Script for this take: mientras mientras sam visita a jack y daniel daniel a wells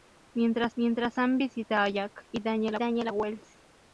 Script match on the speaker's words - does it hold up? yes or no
yes